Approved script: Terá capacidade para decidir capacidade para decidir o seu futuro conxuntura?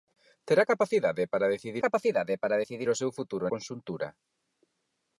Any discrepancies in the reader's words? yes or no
no